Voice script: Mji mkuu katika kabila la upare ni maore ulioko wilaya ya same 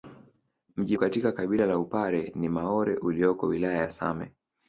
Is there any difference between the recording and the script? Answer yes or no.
yes